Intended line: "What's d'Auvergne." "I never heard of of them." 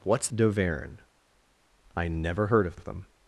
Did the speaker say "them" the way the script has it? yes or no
yes